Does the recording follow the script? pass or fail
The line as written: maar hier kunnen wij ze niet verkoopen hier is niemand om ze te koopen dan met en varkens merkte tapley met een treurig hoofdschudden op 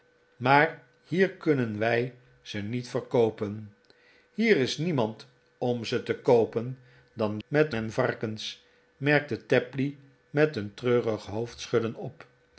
pass